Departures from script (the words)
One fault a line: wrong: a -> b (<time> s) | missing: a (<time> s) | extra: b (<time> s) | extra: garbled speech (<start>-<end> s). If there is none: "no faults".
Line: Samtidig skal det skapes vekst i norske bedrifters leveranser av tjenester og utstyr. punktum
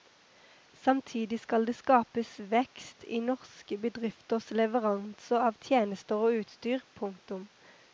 no faults